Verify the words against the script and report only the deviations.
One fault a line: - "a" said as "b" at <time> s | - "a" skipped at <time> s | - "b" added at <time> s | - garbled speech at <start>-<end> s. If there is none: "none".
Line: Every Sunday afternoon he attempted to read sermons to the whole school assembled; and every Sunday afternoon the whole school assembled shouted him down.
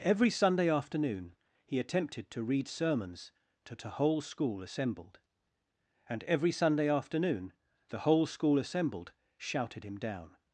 none